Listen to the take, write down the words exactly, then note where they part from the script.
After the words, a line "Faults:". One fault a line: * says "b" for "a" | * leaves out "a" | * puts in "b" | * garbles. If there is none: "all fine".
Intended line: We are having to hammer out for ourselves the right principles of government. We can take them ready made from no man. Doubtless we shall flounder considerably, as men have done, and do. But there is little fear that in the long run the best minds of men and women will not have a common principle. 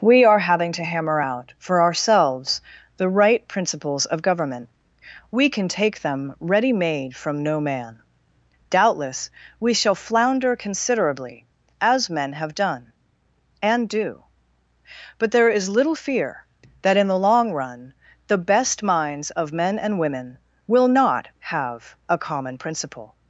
We are having to hammer out for ourselves the right principles of government. We can take them ready made from no man. Doubtless we shall flounder considerably, as men have done, and do. But there is little fear that in the long run the best minds of men and women will not have a common principle.
Faults:
all fine